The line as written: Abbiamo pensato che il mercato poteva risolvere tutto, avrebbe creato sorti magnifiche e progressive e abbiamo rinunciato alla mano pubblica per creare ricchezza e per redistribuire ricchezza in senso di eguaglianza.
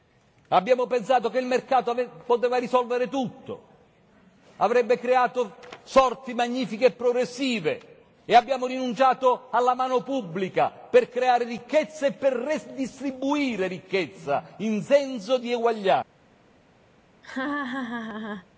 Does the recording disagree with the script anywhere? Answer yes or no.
no